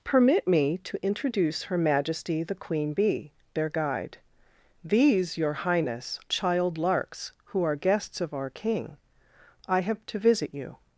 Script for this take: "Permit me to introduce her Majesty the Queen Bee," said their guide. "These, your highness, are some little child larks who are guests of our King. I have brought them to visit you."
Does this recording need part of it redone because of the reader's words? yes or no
yes